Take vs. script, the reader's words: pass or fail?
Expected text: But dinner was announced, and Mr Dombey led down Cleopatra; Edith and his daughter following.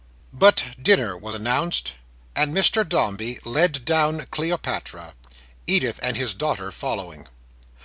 pass